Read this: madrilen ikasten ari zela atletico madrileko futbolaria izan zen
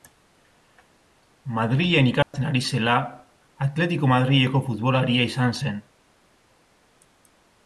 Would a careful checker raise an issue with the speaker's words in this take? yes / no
no